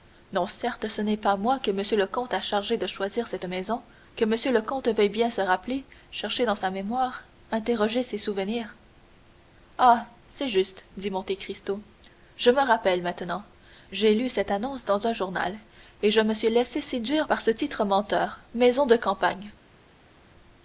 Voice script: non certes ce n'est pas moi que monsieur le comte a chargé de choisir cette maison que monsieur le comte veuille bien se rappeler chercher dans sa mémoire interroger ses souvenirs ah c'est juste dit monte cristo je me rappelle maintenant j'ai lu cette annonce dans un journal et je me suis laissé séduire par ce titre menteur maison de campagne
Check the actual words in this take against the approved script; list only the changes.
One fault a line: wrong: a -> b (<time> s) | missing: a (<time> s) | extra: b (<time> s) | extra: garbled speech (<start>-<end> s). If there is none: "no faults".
no faults